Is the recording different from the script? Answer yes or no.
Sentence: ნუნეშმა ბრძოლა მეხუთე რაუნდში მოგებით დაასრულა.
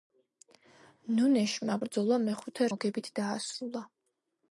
yes